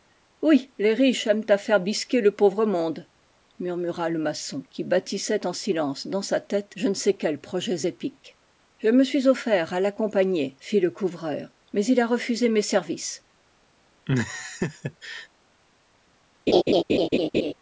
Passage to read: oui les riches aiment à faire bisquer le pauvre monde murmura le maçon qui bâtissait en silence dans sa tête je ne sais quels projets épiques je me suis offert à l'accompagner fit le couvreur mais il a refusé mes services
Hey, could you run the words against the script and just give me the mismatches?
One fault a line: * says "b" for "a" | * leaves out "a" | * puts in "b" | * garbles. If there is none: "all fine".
all fine